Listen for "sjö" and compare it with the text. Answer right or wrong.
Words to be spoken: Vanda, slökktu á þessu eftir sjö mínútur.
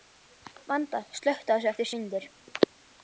wrong